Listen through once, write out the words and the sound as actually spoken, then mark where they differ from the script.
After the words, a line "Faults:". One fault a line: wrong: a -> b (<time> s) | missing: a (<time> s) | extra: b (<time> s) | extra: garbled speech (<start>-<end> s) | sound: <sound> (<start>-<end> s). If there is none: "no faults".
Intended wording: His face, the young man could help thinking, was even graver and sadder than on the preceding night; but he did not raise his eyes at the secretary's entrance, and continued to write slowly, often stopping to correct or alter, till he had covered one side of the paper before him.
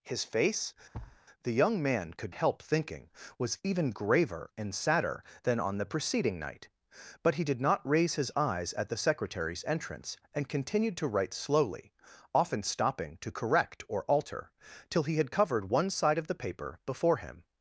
His face, the young man could help thinking, was even graver and sadder than on the preceding night; but he did not raise his eyes at the secretary's entrance, and continued to write slowly, often stopping to correct or alter, till he had covered one side of the paper before him.
Faults:
sound: thud (0.9-1.2 s)